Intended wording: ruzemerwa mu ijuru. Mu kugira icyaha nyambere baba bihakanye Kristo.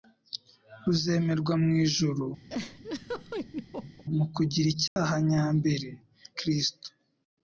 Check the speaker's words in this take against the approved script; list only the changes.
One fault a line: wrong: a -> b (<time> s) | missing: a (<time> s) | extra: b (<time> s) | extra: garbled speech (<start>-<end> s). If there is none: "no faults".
missing: baba bihakanye (5.9 s)